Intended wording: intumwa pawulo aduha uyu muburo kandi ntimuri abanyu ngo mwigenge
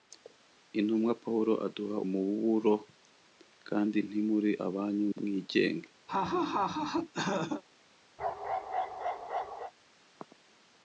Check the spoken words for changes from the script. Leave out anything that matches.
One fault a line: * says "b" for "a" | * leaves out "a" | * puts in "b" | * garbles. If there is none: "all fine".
* leaves out "uyu"
* leaves out "ngo"